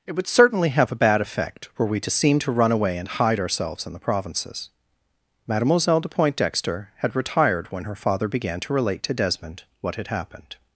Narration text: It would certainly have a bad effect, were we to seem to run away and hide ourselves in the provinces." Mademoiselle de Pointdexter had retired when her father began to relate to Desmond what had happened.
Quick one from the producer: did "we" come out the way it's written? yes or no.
yes